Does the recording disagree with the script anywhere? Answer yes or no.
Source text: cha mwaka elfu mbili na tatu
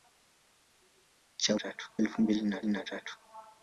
yes